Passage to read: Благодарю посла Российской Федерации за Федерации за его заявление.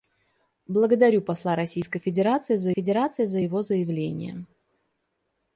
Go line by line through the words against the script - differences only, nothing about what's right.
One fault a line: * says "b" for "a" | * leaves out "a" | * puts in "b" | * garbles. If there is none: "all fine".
all fine